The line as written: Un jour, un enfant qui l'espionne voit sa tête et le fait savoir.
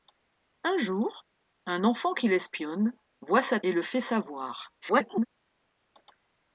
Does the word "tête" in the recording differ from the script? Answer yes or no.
yes